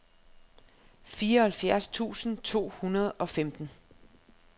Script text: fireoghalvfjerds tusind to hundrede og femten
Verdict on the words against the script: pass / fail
pass